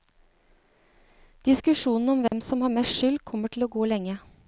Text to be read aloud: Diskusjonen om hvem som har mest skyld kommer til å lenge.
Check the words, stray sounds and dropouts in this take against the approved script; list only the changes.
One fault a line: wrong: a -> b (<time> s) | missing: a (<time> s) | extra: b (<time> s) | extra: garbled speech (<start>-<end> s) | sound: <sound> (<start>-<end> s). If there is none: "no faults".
sound: dropout (2.3-2.3 s)
extra: gå (3.7 s)